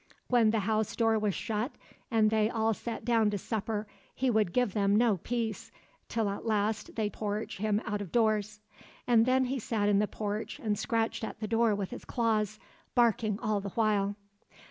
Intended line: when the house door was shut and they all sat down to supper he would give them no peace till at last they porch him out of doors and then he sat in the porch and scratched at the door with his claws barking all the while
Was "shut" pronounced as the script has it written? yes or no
yes